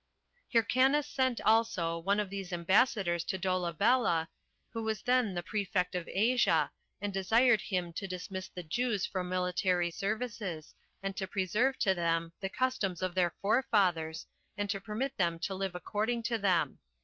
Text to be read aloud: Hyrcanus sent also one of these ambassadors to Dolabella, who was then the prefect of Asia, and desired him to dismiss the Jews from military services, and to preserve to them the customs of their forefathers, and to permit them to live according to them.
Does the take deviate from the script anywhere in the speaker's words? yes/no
no